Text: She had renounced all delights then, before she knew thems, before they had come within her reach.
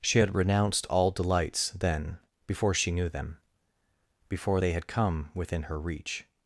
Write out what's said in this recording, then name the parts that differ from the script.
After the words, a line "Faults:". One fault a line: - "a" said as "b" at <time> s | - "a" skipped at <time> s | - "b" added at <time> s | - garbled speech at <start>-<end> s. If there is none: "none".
She had renounced all delights then, before she knew them, before they had come within her reach.
Faults:
- "thems" said as "them" at 3.1 s